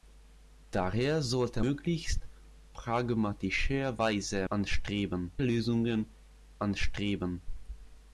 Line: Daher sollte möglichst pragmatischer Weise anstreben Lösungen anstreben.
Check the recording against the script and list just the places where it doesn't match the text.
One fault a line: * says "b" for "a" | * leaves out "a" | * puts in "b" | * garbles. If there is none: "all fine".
all fine